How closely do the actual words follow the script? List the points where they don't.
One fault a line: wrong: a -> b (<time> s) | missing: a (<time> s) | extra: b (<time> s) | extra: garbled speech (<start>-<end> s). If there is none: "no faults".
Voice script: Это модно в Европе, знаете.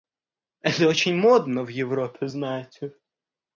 extra: очень (0.9 s)